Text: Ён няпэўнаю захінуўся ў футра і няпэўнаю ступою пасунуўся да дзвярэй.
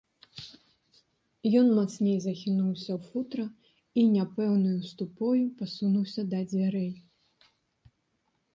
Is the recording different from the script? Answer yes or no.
yes